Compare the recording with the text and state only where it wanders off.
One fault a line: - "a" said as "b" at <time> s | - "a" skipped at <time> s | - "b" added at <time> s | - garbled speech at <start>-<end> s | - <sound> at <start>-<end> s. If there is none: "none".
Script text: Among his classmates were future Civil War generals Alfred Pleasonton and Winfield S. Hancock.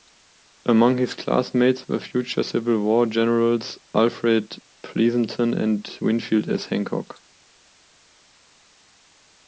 none